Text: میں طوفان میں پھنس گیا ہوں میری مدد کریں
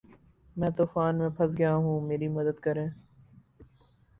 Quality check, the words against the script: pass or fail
pass